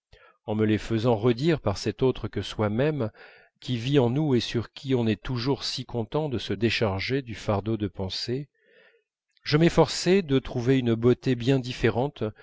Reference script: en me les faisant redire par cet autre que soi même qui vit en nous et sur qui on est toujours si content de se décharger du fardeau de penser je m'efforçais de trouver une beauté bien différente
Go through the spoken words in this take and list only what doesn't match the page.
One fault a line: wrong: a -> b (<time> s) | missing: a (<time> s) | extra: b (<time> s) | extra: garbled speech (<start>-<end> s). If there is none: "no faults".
no faults